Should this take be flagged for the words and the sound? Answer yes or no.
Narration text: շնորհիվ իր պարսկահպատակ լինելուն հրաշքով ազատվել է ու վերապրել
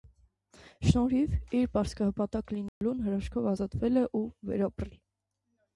yes